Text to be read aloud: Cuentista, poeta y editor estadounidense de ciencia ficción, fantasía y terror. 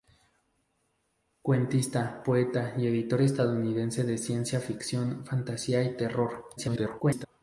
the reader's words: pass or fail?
fail